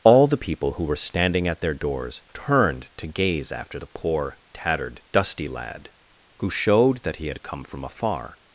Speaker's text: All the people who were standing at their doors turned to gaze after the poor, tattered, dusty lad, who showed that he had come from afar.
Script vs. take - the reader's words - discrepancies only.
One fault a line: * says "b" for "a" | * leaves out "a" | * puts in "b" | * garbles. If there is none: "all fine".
all fine